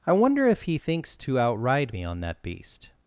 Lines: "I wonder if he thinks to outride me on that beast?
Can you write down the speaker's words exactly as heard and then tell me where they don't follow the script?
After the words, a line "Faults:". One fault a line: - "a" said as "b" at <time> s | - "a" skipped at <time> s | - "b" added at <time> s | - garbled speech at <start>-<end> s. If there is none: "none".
"I wonder if he thinks to outride me on that beast?
Faults:
none